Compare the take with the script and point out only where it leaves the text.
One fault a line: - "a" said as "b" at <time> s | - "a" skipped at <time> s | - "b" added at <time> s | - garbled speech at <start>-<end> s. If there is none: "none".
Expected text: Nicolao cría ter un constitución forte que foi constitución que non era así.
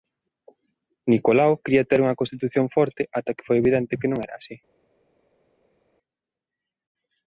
- "un" said as "unha" at 2.0 s
- "ata" added at 3.2 s
- "constitución" said as "evidente" at 3.6 s